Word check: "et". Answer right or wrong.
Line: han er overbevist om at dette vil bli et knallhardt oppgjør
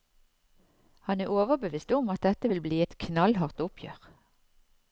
right